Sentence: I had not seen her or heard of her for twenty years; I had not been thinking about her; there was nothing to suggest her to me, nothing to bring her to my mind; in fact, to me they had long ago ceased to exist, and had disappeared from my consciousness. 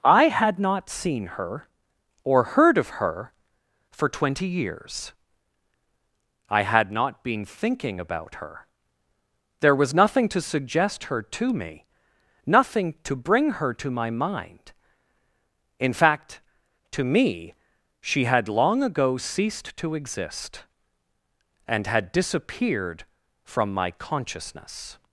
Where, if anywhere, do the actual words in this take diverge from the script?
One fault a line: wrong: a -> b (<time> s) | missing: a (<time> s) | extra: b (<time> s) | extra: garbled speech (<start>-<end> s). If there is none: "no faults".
wrong: they -> she (18.0 s)